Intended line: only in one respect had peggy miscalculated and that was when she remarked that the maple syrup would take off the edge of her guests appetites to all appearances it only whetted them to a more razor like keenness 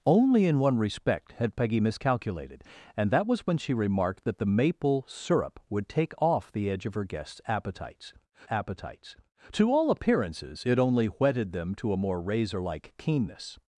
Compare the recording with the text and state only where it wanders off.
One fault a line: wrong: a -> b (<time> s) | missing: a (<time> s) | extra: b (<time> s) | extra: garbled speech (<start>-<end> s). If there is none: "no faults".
extra: appetites (8.5 s)